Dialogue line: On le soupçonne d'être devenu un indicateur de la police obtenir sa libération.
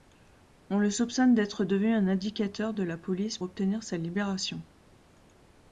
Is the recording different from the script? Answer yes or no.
no